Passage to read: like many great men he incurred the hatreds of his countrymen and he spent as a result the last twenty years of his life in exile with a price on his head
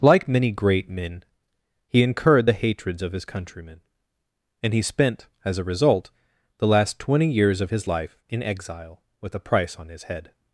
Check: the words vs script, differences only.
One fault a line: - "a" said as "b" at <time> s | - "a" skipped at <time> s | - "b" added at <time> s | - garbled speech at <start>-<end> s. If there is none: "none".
none